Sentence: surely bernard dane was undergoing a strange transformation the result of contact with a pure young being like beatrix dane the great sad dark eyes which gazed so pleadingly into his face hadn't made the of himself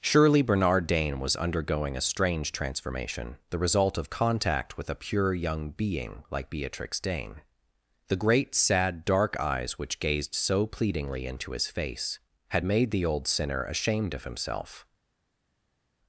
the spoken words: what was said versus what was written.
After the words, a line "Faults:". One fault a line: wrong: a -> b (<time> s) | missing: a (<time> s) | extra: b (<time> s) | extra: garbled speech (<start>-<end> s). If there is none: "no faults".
surely bernard dane was undergoing a strange transformation the result of contact with a pure young being like beatrix dane the great sad dark eyes which gazed so pleadingly into his face had made the old sinner ashamed of himself
Faults:
wrong: hadn't -> had (12.5 s)
extra: old sinner ashamed (13.0 s)